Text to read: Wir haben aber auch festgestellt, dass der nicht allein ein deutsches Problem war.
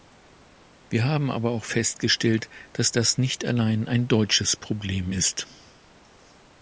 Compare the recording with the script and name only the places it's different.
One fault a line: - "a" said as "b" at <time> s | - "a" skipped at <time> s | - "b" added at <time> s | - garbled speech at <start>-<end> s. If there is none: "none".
- "der" said as "das" at 2.9 s
- "war" said as "ist" at 5.1 s